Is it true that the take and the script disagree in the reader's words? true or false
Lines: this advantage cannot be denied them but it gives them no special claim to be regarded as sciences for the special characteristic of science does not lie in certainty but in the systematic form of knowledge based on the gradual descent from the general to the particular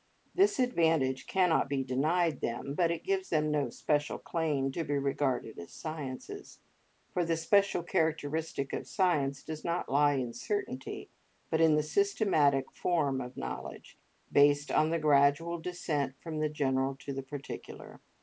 false